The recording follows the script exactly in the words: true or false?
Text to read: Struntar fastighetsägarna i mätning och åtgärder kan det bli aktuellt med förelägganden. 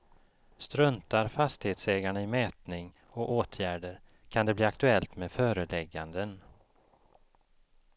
true